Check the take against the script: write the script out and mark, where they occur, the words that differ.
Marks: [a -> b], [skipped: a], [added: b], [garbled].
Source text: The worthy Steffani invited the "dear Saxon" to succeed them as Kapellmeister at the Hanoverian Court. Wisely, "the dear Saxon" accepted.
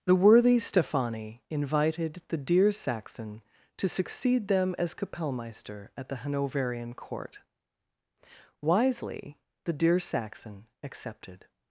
The worthy Steffani invited the "dear Saxon" to succeed them as Kapellmeister at the Hanoverian Court. Wisely, "the dear Saxon" accepted.